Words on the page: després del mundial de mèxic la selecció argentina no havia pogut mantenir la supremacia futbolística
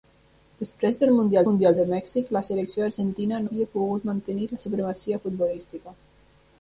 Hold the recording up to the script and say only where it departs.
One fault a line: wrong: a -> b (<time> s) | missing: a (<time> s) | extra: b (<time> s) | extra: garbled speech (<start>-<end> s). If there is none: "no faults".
extra: mundial (1.5 s)
missing: no (3.4 s)